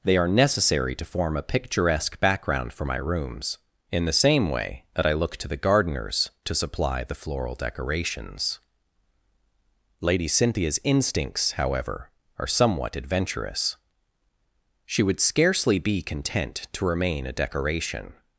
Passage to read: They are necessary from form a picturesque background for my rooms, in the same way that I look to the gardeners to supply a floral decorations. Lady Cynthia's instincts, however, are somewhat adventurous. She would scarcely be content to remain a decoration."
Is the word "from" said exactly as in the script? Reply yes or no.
no